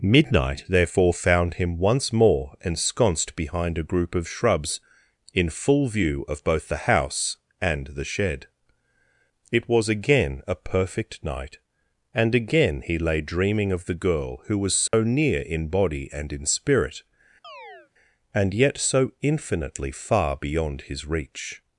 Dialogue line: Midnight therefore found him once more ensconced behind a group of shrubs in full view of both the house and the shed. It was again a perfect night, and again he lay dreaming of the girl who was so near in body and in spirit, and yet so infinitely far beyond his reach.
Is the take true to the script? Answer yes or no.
yes